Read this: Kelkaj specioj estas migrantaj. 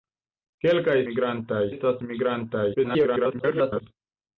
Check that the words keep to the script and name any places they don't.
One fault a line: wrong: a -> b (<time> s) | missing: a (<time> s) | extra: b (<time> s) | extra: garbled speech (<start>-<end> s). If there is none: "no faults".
wrong: specioj -> migrantaj (1.1 s)
extra: garbled speech (2.7-3.8 s)